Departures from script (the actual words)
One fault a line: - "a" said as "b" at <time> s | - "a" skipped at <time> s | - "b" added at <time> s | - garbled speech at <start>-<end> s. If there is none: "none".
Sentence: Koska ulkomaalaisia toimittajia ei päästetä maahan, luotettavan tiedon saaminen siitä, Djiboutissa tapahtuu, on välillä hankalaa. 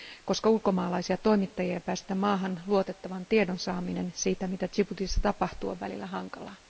- "mitä" added at 4.5 s